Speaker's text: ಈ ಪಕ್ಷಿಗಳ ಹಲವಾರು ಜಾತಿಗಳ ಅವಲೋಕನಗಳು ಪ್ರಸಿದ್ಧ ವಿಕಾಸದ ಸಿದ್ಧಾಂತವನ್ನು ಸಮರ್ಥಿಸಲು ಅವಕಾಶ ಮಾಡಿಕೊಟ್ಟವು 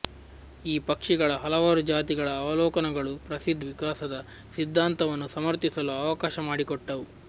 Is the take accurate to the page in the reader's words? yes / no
yes